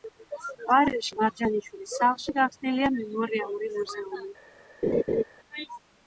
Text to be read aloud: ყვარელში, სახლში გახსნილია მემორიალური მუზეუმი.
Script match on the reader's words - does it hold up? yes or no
no